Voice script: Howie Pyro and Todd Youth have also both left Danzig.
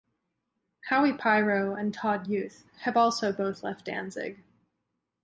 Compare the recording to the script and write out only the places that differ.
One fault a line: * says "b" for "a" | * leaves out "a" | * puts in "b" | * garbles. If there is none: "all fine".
all fine